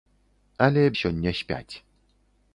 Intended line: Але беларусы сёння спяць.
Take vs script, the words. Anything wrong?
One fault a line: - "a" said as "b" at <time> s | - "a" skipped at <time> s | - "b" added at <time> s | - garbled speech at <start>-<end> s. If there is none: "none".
- "беларусы" skipped at 0.8 s